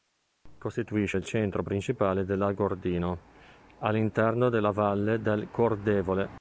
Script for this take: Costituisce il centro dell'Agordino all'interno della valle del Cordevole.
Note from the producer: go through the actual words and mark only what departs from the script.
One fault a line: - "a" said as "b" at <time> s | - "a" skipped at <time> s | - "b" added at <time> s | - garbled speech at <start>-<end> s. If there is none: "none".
- "principale" added at 1.6 s